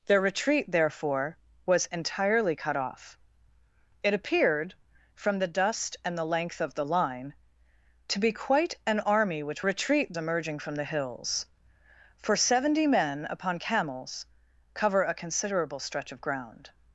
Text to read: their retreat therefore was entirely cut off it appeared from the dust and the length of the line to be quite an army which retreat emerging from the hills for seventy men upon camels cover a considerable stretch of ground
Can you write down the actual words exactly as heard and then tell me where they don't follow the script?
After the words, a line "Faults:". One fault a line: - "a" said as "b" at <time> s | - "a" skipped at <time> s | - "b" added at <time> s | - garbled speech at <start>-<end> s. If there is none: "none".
their retreat therefore was entirely cut off it appeared from the dust and the length of the line to be quite an army which retreat emerging from the hills for seventy men upon camels cover a considerable stretch of ground
Faults:
none